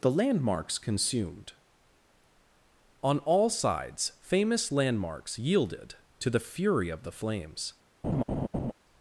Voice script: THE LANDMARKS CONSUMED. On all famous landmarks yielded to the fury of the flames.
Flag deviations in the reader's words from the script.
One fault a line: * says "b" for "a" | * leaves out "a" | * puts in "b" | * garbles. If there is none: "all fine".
* puts in "sides"